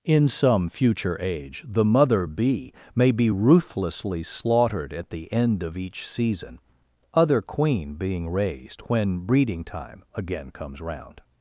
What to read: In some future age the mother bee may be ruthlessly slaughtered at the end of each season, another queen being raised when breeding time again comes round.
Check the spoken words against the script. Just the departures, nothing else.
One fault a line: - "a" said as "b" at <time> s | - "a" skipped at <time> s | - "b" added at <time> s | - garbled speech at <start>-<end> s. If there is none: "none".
- "another" said as "other" at 7.1 s